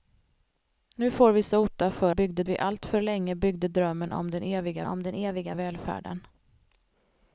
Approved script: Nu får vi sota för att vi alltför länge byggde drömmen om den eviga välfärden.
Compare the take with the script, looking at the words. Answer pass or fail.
fail